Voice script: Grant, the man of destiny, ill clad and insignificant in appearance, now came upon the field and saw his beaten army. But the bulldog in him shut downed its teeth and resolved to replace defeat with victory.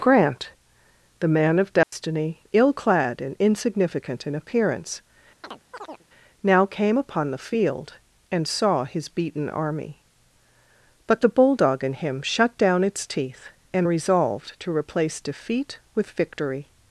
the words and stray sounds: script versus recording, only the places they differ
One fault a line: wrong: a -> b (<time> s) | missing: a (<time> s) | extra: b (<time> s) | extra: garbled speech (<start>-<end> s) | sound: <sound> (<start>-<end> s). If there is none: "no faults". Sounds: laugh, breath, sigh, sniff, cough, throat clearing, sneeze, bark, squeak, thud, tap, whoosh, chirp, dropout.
sound: dropout (1.8-1.9 s)
sound: chirp (5.4-6.1 s)
wrong: downed -> down (12.6 s)